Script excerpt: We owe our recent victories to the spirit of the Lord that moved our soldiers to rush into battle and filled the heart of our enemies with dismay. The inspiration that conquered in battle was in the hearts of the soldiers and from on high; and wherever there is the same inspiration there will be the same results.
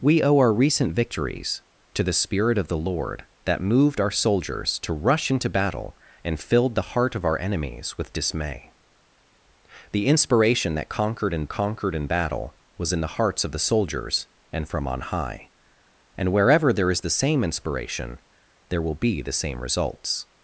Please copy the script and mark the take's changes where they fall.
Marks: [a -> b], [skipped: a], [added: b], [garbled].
We owe our recent victories to the spirit of the Lord that moved our soldiers to rush into battle and filled the heart of our enemies with dismay. The inspiration that conquered in [added: conquered in] battle was in the hearts of the soldiers and from on high; and wherever there is the same inspiration there will be the same results.